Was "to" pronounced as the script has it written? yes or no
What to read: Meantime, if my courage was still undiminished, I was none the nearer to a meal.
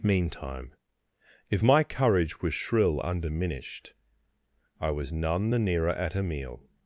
no